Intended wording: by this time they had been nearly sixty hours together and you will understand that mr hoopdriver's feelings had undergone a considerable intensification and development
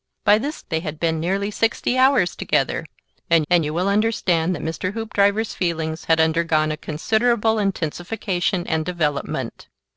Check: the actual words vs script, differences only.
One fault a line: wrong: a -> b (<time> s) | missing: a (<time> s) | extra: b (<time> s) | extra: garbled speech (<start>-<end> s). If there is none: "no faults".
missing: time (0.6 s)
extra: and (3.5 s)